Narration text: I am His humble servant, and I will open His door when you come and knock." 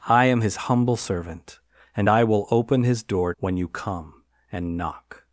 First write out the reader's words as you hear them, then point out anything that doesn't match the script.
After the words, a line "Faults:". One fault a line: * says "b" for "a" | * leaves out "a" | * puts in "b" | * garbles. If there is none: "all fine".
I am His humble servant, and I will open His door when you come and knock."
Faults:
all fine